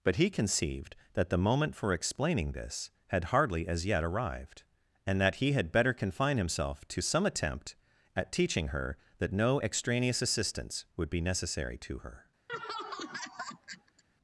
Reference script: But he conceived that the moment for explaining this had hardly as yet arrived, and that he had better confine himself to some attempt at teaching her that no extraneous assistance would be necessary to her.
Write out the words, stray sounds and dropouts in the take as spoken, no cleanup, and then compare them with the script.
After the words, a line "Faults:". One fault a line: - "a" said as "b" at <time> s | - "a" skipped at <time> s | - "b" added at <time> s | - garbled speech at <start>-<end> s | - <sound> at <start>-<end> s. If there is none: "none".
But he conceived that the moment for explaining this had hardly as yet arrived, and that he had better confine himself to some attempt at teaching her that no extraneous assistance would be necessary to her.
Faults:
- laugh at 12.5-14.0 s